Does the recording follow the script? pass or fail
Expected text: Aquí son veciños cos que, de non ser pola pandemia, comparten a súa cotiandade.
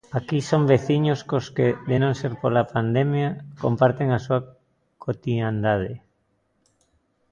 pass